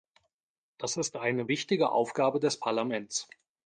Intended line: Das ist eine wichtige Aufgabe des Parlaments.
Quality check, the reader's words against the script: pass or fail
pass